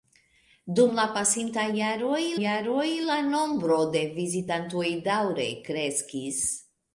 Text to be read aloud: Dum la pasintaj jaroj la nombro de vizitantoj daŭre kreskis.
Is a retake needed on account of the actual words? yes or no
yes